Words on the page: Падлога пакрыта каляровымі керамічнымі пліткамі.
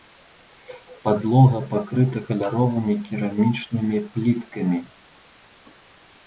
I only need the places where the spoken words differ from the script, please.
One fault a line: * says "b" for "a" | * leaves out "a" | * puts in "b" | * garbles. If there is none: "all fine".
all fine